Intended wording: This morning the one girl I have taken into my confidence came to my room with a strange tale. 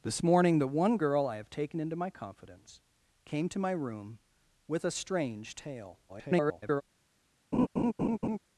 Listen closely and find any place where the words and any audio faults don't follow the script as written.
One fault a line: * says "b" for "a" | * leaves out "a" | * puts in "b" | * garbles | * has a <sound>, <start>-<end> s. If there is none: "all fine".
* garbles
* has a laugh, 7.5-8.4 s